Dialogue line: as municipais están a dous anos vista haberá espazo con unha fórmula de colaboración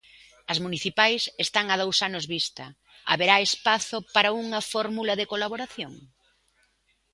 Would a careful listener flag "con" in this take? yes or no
yes